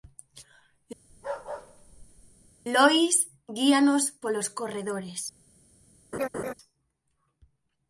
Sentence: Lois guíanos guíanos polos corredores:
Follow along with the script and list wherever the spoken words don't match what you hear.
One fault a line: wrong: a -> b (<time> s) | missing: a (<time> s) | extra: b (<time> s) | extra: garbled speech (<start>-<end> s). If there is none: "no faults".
missing: guíanos (4.0 s)